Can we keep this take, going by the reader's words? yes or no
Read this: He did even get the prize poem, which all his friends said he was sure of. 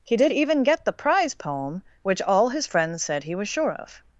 yes